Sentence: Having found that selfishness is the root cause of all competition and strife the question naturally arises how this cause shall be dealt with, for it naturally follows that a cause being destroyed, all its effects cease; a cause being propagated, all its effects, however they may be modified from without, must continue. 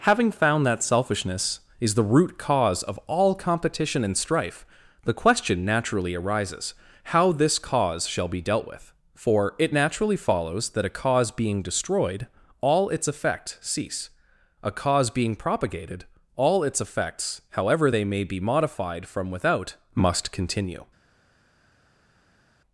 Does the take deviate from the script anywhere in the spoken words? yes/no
no